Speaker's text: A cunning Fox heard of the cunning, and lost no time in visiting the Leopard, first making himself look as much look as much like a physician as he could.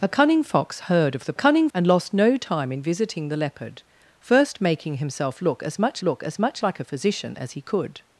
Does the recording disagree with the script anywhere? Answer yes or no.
no